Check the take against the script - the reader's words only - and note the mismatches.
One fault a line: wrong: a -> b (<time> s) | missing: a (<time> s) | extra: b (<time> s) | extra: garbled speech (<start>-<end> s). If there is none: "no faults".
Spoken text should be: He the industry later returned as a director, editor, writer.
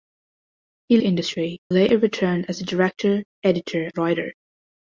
no faults